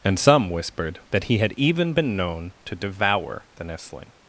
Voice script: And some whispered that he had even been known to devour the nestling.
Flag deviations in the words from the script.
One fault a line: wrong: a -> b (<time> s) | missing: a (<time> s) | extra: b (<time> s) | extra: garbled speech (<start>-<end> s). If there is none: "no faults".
no faults